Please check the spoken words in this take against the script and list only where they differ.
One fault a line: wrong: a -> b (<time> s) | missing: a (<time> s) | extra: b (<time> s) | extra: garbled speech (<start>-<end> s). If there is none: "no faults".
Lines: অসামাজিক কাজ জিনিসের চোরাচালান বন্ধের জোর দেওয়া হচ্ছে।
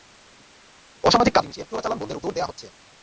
no faults